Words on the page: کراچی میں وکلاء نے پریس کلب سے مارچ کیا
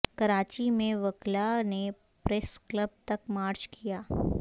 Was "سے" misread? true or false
true